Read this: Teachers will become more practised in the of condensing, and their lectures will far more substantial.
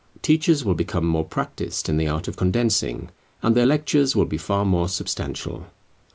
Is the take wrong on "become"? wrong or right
right